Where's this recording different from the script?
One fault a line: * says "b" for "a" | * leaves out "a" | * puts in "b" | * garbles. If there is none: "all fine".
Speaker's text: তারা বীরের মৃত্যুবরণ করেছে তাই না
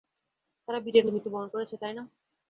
all fine